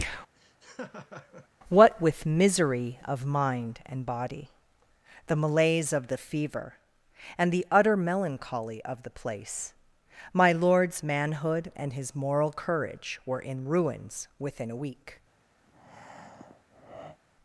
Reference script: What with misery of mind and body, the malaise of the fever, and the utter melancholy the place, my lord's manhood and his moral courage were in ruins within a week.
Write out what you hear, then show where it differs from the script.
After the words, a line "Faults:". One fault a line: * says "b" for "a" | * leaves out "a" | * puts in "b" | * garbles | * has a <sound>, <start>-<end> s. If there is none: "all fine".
What with misery of mind and body, the malaise of the fever, and the utter melancholy of the place, my lord's manhood and his moral courage were in ruins within a week.
Faults:
* has a laugh, 0.4-1.5 s
* puts in "of"
* has a breath, 15.6-17.2 s